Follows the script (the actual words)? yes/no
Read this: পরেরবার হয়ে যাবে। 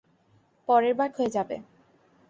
yes